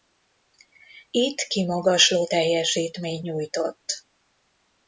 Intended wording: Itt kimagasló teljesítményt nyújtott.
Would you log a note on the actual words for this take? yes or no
no